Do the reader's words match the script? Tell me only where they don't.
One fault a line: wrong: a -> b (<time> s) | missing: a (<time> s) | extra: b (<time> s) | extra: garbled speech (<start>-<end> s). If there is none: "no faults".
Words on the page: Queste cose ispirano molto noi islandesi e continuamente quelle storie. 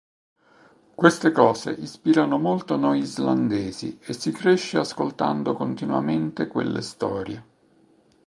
extra: si cresce ascoltando (4.1 s)